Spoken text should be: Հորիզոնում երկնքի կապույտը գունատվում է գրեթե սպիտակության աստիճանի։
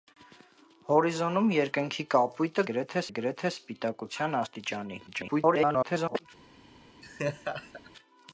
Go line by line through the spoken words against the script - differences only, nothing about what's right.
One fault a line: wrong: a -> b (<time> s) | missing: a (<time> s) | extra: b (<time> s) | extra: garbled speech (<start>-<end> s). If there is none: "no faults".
wrong: գունատվում -> գրեթե (2.7 s)
extra: garbled speech (5.1-6.3 s)